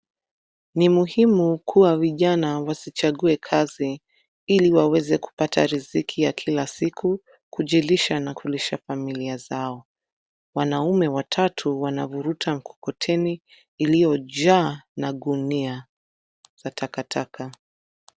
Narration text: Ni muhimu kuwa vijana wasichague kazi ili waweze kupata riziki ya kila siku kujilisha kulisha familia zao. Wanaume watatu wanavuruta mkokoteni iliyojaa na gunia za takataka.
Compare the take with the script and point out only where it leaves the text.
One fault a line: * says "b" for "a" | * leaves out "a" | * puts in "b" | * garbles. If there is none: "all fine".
* puts in "na"